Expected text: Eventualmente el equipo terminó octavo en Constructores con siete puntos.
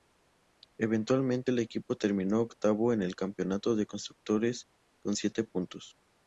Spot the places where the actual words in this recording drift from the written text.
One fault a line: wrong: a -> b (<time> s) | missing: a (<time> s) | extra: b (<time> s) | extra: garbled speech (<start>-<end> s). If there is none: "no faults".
extra: el Campeonato de (3.0 s)